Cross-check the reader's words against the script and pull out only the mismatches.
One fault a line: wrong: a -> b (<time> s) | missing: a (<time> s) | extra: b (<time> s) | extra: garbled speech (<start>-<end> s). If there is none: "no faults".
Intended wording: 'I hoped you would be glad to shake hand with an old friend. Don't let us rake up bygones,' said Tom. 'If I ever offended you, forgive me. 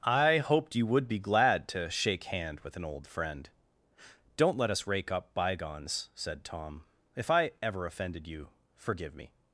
no faults